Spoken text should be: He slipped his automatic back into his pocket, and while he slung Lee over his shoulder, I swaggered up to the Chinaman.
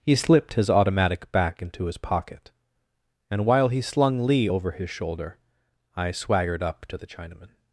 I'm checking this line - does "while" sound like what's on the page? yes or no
yes